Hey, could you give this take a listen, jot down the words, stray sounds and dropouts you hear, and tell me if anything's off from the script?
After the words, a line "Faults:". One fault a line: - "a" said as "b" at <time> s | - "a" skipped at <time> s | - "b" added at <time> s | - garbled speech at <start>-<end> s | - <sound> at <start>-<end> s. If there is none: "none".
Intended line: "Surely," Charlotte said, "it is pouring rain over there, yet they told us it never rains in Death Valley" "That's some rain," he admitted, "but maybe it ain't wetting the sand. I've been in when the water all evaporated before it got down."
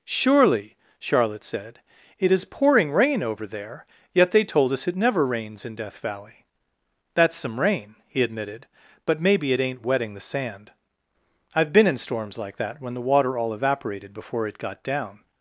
"Surely," Charlotte said, "it is pouring rain over there, yet they told us it never rains in Death Valley" "That's some rain," he admitted, "but maybe it ain't wetting the sand. I've been in storms like that when the water all evaporated before it got down."
Faults:
- "storms like that" added at 12.0 s